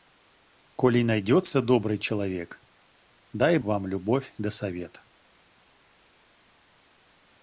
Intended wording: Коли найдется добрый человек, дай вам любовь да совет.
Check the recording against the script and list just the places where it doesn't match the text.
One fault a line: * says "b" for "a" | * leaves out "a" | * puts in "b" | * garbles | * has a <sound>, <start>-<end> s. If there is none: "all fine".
all fine